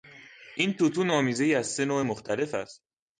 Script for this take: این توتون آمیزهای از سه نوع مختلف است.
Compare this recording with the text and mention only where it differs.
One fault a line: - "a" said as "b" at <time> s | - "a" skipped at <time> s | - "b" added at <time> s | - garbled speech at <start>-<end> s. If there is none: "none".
none